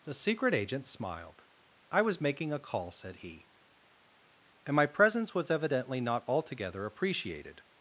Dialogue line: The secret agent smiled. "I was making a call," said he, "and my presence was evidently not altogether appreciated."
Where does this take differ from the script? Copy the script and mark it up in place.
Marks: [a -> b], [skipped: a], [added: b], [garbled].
The secret agent smiled. "I was making a call," said he, "and my presence was evidently not altogether appreciated."